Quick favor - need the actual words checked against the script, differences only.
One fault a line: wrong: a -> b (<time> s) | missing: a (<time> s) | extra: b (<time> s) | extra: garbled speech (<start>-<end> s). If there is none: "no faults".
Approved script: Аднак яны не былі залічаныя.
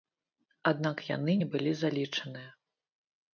no faults